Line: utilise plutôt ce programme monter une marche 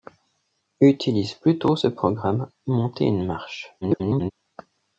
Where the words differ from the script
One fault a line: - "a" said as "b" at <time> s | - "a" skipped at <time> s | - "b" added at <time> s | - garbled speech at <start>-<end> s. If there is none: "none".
- garbled speech at 3.8-4.3 s